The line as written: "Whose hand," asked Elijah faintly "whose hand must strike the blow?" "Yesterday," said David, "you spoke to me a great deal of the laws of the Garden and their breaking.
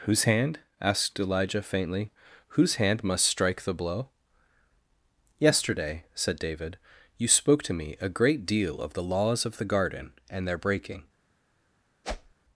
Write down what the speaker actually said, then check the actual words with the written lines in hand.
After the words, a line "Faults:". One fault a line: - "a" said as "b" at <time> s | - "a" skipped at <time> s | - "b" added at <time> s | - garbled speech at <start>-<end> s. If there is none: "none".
"Whose hand," asked Elijah faintly "whose hand must strike the blow?" "Yesterday," said David, "you spoke to me a great deal of the laws of the Garden and their breaking.
Faults:
none